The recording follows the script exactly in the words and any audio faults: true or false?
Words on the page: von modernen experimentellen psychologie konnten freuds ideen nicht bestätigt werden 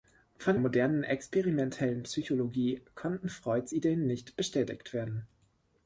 true